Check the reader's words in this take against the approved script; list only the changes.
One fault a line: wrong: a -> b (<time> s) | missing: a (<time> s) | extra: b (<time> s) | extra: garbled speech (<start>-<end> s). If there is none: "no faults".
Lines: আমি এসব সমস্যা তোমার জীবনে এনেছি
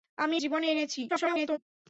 missing: এসব সমস্যা তোমার (0.3 s)
extra: garbled speech (1.1-1.6 s)